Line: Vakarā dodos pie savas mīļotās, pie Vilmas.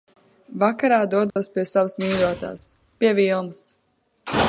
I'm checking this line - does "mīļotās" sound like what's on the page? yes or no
yes